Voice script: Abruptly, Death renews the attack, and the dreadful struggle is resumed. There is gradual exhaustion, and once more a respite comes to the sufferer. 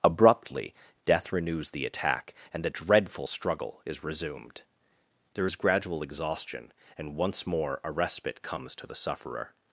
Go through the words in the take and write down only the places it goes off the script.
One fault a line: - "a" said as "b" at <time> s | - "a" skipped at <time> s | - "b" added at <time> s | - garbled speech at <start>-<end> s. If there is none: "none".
none